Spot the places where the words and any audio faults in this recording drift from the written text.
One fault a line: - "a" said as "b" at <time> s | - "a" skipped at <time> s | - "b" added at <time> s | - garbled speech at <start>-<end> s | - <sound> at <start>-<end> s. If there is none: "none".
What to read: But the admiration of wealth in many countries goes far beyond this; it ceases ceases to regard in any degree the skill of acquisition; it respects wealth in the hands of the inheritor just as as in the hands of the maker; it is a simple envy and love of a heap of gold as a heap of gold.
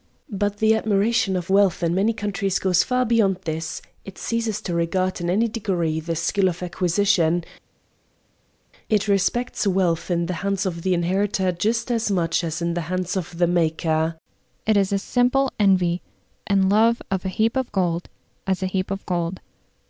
- "ceases" skipped at 4.6 s
- "much" added at 12.1 s